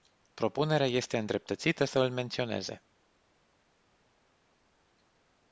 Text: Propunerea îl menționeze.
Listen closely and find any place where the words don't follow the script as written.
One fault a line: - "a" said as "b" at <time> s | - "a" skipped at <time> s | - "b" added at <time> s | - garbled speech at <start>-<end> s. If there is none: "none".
- "este îndreptățită să" added at 0.9 s